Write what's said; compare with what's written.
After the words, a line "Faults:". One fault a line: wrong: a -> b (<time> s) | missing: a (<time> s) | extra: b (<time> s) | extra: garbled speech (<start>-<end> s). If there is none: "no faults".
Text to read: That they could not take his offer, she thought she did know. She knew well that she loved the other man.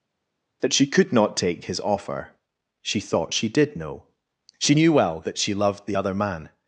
That she could not take his offer, she thought she did know. She knew well that she loved the other man.
Faults:
wrong: they -> she (0.7 s)